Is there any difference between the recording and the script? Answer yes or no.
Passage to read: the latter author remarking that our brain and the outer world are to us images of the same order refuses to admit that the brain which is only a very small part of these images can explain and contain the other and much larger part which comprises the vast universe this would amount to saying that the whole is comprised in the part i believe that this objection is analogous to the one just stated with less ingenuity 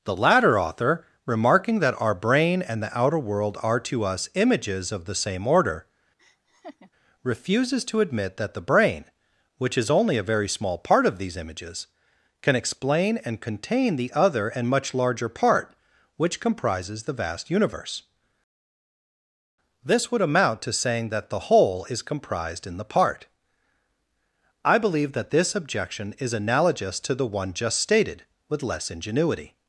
no